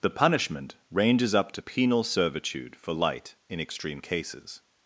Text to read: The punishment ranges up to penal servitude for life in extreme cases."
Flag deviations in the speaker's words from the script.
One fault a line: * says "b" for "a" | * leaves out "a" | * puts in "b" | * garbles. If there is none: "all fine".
* says "light" for "life"